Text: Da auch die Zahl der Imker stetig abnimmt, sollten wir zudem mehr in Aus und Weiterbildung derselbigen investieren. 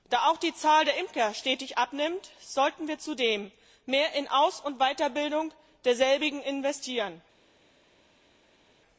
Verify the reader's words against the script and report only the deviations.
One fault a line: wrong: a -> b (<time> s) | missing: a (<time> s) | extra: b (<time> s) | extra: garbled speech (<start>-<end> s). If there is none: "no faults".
no faults